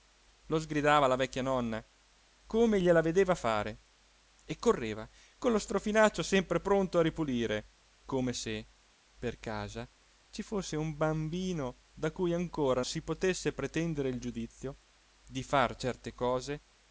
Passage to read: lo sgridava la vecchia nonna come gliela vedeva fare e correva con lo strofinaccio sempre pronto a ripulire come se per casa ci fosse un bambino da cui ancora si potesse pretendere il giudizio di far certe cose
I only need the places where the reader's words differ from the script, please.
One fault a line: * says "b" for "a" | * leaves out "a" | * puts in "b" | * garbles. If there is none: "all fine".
all fine